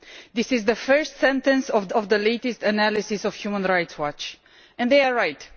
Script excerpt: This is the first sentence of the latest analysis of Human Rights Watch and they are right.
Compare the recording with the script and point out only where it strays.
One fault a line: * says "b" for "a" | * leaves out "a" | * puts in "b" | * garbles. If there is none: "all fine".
* puts in "of"